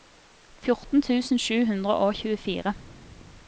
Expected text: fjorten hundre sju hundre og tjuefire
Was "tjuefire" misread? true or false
false